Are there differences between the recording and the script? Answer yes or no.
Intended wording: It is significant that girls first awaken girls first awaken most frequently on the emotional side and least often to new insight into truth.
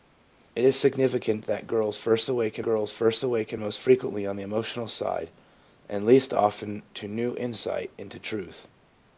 no